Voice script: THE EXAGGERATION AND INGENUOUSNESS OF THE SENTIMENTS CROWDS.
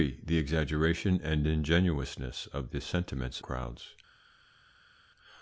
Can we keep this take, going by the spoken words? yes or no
yes